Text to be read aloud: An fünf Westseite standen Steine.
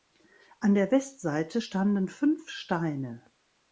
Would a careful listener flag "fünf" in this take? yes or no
yes